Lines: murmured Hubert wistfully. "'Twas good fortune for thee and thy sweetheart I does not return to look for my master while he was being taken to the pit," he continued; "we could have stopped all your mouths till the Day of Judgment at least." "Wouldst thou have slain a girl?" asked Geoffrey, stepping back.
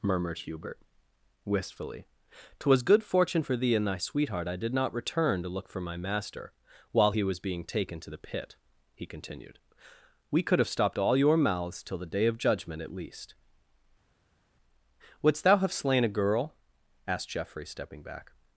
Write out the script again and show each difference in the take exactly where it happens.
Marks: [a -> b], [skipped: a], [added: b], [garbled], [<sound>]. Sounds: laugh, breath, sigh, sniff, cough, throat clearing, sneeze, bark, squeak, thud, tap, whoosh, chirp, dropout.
murmured Hubert wistfully. "'Twas good fortune for thee and thy sweetheart I [does -> did] not return to look for my master while he was being taken to the pit," he continued; "we could have stopped all your mouths till the Day of Judgment at least." "Wouldst thou have slain a girl?" asked Geoffrey, stepping back.